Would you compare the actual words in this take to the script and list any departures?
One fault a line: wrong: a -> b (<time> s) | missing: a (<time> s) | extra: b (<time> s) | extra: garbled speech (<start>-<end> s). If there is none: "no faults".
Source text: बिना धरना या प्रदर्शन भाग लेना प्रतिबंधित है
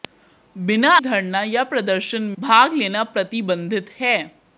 no faults